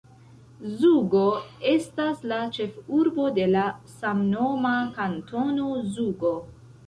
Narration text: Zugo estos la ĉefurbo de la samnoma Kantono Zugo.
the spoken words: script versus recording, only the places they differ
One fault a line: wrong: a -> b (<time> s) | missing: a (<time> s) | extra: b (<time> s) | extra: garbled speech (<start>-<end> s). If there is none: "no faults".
wrong: estos -> estas (1.7 s)